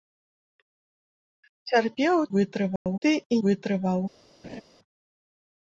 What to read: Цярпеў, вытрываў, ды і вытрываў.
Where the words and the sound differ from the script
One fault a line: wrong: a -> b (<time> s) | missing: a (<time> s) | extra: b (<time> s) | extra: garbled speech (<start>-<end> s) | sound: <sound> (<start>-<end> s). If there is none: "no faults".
sound: dropout (2.8-2.9 s)
sound: laugh (4.4-4.6 s)